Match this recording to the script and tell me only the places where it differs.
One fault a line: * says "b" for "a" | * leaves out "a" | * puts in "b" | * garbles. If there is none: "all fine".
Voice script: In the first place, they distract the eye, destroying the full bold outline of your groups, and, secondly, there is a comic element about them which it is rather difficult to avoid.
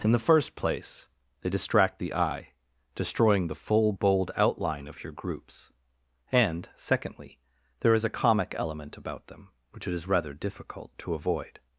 all fine